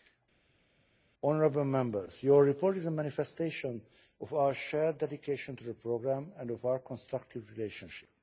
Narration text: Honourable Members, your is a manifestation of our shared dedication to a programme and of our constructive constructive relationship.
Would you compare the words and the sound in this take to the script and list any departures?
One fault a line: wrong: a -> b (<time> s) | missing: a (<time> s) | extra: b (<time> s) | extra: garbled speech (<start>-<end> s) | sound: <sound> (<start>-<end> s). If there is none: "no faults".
extra: report (2.4 s)
wrong: a -> the (5.6 s)
missing: constructive (7.5 s)